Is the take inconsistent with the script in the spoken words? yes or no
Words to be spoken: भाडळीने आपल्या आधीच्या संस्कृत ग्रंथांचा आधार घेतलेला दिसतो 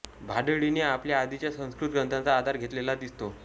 no